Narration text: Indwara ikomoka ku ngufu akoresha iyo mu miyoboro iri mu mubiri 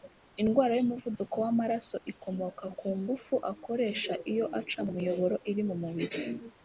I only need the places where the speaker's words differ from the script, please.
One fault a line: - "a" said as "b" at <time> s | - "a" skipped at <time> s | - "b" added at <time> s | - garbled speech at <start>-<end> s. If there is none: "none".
- "y'umuvuduko w'amaraso" added at 0.8 s
- "aca" added at 4.6 s